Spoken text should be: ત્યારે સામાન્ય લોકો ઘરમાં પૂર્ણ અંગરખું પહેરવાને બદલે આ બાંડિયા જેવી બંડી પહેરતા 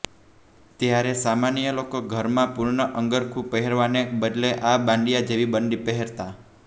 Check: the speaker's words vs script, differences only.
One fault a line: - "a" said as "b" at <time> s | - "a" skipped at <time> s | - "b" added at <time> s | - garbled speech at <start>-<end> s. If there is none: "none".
none